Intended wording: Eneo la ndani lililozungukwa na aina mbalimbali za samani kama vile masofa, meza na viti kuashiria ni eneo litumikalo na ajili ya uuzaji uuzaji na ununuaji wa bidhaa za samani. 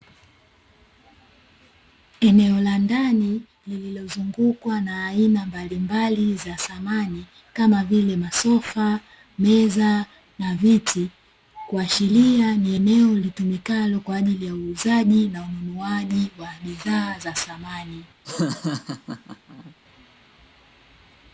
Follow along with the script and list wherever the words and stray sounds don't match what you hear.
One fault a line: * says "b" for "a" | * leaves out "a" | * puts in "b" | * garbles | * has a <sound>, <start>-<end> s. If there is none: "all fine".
* says "kwa" for "na"
* leaves out "uuzaji"
* has a laugh, 18.2-19.7 s